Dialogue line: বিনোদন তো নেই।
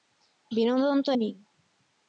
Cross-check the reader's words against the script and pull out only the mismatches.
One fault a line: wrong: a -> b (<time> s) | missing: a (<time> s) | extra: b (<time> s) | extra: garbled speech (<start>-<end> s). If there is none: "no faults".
no faults